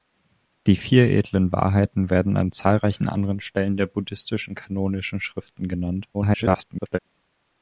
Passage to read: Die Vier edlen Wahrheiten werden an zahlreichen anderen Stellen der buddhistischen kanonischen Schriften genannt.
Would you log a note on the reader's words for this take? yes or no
yes